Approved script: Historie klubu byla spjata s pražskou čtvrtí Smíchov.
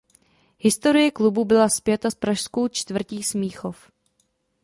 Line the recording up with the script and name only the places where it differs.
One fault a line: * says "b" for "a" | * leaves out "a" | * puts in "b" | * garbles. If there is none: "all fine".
all fine